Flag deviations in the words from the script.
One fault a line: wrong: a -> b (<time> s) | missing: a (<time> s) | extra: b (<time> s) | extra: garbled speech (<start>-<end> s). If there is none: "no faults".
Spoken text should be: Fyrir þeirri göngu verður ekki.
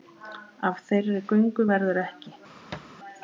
wrong: Fyrir -> Af (0.7 s)